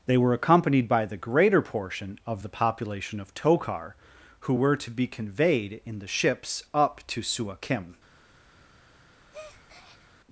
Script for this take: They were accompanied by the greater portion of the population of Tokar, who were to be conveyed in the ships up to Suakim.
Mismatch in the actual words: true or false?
false